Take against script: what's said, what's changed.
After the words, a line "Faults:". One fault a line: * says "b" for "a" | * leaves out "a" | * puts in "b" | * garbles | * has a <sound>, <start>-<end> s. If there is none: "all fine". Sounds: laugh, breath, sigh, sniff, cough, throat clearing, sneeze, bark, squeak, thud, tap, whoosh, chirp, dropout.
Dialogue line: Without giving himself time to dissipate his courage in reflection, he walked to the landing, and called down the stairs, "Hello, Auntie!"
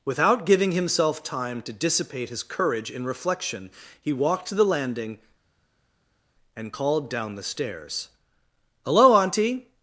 Without giving himself time to dissipate his courage in reflection, he walked to the landing, and called down the stairs, "Hello, Auntie!"
Faults:
all fine